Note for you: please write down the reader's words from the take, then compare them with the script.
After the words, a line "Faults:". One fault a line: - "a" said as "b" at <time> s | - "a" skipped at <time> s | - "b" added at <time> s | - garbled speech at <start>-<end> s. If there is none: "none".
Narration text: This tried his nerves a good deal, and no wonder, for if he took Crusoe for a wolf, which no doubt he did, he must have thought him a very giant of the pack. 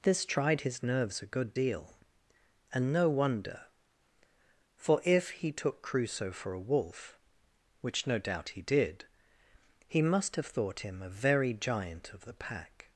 This tried his nerves a good deal, and no wonder, for if he took Crusoe for a wolf, which no doubt he did, he must have thought him a very giant of the pack.
Faults:
none